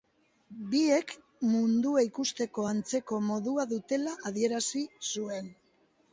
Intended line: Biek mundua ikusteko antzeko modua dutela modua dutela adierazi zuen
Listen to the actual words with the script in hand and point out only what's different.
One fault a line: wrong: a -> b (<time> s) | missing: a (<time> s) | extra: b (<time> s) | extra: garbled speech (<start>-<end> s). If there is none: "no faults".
missing: modua dutela (4.2 s)